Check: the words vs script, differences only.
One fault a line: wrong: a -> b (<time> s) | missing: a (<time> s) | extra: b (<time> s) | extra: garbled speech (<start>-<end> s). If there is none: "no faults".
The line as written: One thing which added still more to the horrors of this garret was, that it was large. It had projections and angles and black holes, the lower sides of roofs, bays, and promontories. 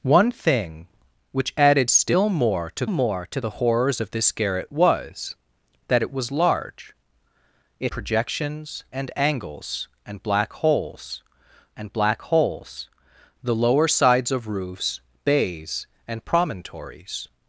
extra: more to (2.9 s)
missing: had (7.9 s)
extra: and black holes (11.8 s)